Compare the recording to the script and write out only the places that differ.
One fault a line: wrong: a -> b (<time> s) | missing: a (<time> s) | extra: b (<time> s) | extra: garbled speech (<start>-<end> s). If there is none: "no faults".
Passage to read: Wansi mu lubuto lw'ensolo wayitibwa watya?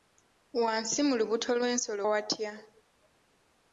missing: wayitibwa (2.0 s)